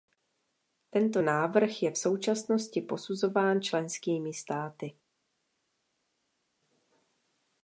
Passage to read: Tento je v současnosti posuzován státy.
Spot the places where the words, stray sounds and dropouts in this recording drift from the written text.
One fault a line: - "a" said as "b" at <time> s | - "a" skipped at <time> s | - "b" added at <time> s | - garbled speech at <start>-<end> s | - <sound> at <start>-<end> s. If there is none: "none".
- "návrh" added at 1.2 s
- "členskými" added at 3.6 s